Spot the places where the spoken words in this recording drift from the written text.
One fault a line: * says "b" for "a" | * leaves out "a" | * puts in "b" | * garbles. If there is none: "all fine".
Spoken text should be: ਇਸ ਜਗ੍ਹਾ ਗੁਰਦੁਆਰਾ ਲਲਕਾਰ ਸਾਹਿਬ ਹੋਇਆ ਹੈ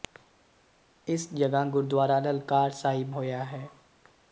all fine